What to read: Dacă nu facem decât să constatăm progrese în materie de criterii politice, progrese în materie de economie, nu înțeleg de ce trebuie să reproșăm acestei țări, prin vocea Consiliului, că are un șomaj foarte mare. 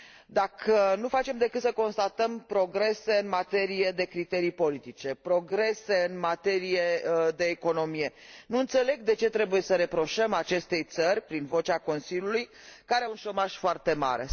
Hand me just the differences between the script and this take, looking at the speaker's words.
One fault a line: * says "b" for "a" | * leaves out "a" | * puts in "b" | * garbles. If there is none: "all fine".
all fine